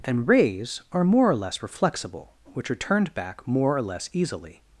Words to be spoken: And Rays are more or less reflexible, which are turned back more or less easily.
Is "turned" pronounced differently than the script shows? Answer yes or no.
no